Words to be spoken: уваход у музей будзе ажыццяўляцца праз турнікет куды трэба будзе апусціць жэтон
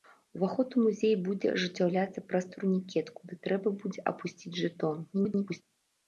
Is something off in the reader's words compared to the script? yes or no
yes